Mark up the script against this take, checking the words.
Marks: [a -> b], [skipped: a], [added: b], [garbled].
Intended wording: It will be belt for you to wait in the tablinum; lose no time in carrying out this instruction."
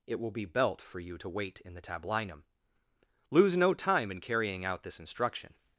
It will be belt for you to wait in the tablinum; lose no time in carrying out this instruction."